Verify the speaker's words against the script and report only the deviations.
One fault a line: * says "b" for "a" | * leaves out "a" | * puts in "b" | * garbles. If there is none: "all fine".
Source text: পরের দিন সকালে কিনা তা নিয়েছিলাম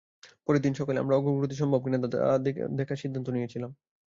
* puts in "আমরা অগ্রগতি সম্ভব"
* puts in "দেখার সিদ্ধান্ত"